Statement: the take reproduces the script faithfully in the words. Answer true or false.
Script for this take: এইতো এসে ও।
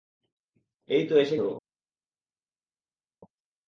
true